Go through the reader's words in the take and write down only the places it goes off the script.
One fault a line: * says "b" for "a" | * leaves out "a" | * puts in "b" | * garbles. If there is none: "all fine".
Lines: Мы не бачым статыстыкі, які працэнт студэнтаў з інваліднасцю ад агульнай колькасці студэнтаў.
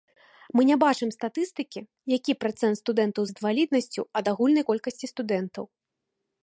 all fine